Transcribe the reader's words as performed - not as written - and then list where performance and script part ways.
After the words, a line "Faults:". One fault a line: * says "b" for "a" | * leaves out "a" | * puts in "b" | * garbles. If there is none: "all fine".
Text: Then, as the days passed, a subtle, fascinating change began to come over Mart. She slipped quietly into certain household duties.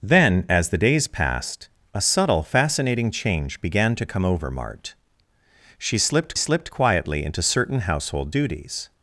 Then, as the days passed, a subtle, fascinating change began to come over Mart. She slipped slipped quietly into certain household duties.
Faults:
* puts in "slipped"